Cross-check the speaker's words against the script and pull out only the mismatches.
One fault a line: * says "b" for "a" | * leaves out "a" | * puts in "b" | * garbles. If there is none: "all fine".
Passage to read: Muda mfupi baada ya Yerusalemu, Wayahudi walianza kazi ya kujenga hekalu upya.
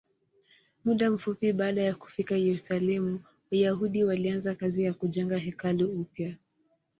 * puts in "kufika"